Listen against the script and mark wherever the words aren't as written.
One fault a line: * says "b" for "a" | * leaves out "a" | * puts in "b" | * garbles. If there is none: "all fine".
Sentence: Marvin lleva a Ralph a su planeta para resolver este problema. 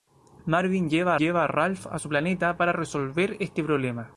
* puts in "lleva"